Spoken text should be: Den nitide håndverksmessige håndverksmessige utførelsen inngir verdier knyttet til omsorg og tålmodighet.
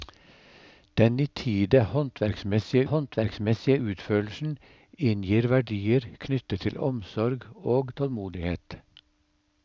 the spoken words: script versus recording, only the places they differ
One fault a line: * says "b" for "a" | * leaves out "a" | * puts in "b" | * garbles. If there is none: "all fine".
all fine